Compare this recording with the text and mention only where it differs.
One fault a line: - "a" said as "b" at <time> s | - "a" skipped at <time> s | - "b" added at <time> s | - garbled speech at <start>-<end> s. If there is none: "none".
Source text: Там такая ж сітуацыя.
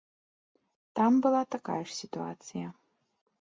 - "была" added at 1.2 s